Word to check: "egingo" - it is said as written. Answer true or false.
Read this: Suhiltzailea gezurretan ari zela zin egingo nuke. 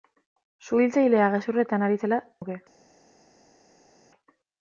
false